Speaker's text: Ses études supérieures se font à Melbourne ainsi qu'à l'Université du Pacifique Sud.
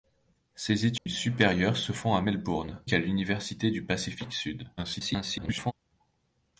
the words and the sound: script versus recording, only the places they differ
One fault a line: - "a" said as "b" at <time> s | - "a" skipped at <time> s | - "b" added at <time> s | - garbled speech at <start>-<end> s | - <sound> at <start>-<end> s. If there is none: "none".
- dropout at 1.0-1.1 s
- "ainsi" skipped at 2.8 s
- garbled speech at 4.8-5.7 s